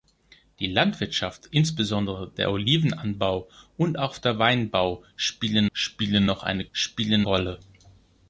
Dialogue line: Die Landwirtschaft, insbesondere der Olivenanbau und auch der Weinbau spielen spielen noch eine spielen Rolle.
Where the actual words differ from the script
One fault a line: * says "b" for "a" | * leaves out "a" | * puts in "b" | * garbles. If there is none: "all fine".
all fine